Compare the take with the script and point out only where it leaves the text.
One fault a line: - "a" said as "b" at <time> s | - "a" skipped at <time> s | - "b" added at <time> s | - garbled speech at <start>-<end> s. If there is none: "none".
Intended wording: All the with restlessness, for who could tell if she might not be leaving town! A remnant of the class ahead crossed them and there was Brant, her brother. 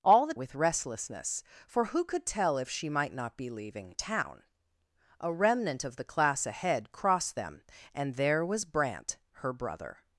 none